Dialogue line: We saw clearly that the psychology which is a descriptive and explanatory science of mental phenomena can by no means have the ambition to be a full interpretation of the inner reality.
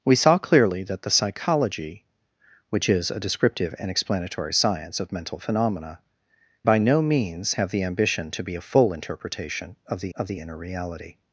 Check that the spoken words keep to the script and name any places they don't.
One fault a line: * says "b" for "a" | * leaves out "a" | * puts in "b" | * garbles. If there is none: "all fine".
* leaves out "can"
* puts in "of the"